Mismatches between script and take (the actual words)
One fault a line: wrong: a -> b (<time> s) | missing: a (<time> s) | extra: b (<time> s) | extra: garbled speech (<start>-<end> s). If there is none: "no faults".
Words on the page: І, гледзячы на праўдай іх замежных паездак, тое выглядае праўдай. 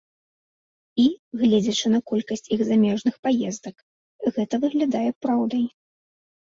wrong: праўдай -> колькасць (2.1 s)
wrong: тое -> гэта (4.4 s)